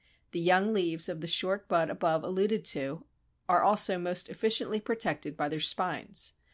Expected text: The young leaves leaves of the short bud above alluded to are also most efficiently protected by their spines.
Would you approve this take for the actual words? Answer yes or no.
no